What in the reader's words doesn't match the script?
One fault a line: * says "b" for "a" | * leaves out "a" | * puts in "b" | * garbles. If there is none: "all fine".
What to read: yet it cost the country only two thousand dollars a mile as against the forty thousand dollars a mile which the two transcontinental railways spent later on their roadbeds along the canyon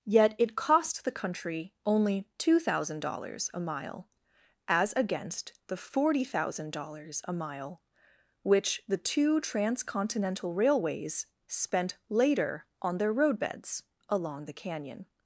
all fine